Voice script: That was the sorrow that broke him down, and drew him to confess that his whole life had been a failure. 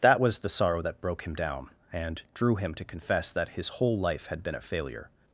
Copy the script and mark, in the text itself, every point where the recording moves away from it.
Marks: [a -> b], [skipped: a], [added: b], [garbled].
That was the sorrow that broke him down, and drew him to confess that his whole life had been a failure.